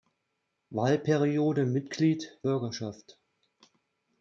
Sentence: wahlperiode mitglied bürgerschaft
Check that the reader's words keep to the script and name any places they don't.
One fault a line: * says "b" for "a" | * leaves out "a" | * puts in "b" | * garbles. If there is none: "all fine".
all fine